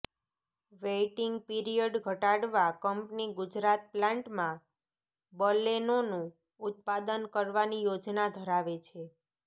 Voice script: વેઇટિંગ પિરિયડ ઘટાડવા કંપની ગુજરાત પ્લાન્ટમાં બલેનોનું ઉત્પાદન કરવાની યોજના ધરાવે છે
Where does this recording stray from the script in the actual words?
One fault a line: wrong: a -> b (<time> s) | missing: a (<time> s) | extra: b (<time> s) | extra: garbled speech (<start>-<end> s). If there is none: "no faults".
no faults